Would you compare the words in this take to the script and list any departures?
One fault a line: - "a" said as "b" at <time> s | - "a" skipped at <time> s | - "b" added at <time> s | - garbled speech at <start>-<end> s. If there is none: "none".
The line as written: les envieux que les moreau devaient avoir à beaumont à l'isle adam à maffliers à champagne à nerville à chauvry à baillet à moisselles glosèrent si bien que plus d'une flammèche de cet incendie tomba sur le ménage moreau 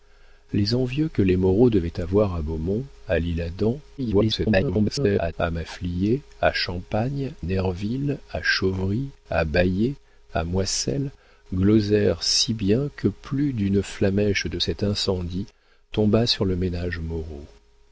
- garbled speech at 4.0-5.3 s
- "à" skipped at 7.3 s